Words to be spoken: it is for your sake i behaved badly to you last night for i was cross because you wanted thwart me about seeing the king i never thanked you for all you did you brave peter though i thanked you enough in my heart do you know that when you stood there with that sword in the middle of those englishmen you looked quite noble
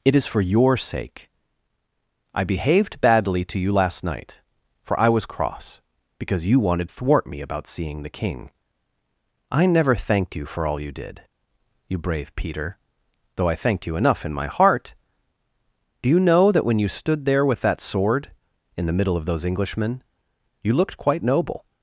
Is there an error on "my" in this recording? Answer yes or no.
no